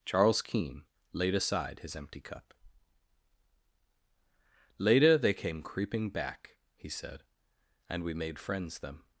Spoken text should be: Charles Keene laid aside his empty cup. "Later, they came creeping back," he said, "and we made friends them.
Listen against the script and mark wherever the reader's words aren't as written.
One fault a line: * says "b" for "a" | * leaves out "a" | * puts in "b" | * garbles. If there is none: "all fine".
all fine